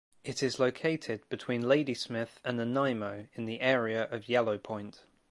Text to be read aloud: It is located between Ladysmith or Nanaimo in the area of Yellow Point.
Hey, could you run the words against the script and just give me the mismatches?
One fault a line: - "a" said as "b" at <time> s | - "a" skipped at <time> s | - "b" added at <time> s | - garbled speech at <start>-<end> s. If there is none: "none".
- "or" said as "and" at 2.4 s